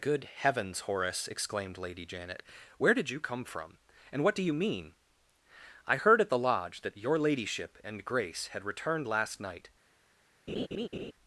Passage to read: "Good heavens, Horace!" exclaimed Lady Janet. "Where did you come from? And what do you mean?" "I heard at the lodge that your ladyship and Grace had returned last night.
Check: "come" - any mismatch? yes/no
no